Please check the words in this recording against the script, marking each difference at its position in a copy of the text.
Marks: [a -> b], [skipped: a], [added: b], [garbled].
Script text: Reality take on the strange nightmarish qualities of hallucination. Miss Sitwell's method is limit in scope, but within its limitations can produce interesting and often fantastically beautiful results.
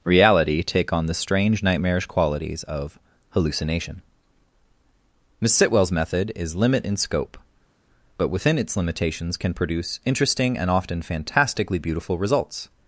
Reality take on the strange nightmarish qualities of hallucination. Miss Sitwell's method is limit in scope, but within its limitations can produce interesting and often fantastically beautiful results.